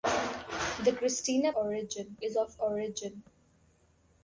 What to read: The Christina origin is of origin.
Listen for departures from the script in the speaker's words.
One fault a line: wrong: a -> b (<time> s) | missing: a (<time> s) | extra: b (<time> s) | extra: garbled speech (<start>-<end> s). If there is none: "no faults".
no faults